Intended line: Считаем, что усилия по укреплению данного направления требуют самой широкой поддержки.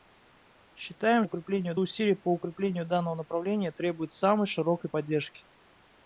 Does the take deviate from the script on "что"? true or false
true